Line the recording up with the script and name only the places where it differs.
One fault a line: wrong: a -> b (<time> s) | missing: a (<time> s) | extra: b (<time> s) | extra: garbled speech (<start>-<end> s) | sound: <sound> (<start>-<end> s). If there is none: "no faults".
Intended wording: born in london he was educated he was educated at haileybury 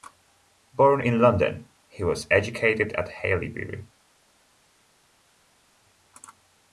missing: he was educated (2.9 s)